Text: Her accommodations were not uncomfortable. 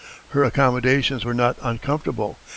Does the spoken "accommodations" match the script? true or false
true